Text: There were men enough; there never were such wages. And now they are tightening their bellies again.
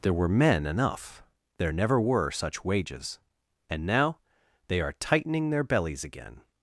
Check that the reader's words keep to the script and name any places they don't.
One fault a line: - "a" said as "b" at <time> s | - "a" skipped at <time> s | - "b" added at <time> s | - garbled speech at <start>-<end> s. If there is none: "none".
none